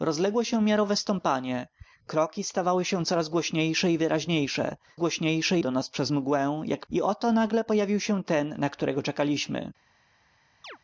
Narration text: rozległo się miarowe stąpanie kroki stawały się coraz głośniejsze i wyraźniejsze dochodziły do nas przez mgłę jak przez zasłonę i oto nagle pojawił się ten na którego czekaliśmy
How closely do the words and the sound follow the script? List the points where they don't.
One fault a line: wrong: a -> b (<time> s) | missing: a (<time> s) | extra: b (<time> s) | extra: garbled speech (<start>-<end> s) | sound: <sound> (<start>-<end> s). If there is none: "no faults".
wrong: dochodziły -> głośniejsze (5.0 s)
missing: przez zasłonę (6.9 s)
sound: chirp (10.6-10.8 s)